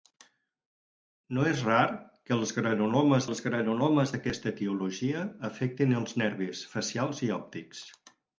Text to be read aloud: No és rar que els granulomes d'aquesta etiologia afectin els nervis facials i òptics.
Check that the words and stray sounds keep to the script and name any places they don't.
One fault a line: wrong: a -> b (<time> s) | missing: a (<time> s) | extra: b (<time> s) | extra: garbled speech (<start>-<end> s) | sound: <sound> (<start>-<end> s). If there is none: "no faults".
extra: els granulomes (3.3 s)